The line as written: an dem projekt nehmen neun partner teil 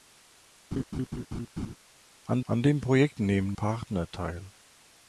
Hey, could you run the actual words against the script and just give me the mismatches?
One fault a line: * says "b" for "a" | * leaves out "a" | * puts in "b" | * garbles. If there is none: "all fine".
* puts in "an"
* leaves out "neun"